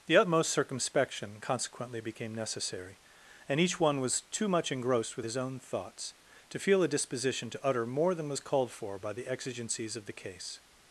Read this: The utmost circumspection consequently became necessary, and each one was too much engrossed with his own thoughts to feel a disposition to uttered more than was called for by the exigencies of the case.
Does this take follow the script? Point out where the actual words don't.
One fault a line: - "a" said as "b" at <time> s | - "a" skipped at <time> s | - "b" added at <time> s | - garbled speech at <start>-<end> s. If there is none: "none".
- "uttered" said as "utter" at 7.6 s